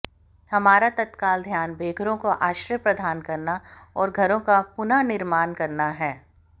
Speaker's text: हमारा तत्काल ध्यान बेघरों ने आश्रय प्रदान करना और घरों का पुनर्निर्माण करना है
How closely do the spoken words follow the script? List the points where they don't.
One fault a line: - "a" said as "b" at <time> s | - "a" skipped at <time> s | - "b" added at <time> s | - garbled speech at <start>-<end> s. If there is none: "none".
- "ने" said as "को" at 2.2 s